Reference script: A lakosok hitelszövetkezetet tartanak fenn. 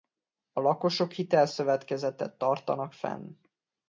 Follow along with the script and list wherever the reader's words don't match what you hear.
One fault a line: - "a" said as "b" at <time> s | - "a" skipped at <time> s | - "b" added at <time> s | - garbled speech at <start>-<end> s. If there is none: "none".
none